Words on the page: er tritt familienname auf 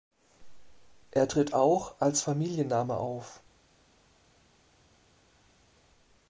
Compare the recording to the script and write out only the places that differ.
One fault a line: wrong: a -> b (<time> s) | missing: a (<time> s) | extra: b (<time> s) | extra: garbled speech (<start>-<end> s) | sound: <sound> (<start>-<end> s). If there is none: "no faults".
extra: auch als (1.5 s)